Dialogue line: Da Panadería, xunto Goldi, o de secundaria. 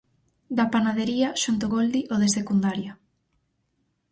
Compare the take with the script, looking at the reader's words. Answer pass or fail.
pass